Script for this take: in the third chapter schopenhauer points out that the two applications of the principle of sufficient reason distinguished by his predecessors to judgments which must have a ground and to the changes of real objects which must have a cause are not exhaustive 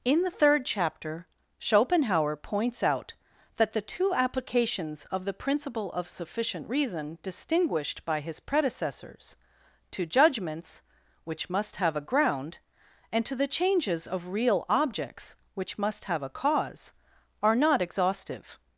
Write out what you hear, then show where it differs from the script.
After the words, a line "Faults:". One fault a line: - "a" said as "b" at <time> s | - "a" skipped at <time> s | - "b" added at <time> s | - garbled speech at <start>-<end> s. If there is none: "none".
in the third chapter schopenhauer points out that the two applications of the principle of sufficient reason distinguished by his predecessors to judgments which must have a ground and to the changes of real objects which must have a cause are not exhaustive
Faults:
none